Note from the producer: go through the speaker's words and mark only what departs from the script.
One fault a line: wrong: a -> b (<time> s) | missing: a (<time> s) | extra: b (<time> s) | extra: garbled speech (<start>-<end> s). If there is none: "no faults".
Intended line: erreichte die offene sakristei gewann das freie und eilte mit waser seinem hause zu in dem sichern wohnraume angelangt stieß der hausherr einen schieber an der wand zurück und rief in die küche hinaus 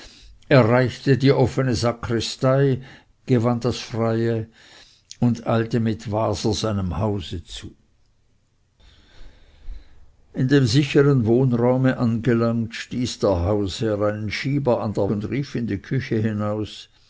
missing: wand zurück (15.1 s)